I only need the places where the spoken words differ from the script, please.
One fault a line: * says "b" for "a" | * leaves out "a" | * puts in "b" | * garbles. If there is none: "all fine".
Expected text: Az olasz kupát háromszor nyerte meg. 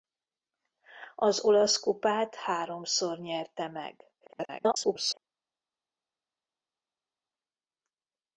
* garbles